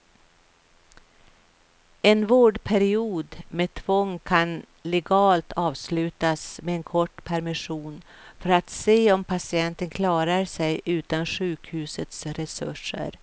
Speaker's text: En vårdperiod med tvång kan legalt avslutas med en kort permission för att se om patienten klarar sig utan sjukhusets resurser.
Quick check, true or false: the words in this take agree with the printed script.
true